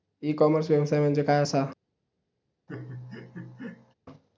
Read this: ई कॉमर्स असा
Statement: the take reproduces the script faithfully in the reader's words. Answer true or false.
false